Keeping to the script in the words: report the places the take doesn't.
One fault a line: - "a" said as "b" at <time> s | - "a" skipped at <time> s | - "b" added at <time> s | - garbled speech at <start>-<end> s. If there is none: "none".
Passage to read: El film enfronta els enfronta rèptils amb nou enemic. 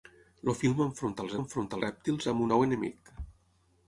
none